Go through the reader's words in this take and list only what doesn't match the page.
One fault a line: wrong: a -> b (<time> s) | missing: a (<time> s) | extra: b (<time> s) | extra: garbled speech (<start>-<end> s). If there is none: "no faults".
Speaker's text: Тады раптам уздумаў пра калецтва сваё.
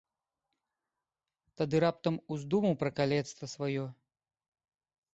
no faults